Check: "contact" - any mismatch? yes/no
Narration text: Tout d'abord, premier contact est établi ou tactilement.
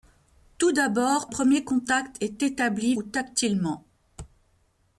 no